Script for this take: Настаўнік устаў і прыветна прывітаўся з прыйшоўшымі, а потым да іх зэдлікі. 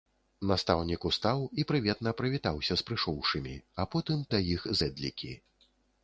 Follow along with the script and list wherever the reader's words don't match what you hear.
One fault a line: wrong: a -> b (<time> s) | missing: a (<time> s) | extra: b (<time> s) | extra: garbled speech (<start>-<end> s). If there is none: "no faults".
no faults